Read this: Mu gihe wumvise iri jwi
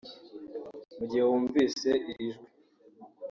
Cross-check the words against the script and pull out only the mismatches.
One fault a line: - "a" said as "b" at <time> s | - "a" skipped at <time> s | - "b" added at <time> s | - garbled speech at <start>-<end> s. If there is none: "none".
none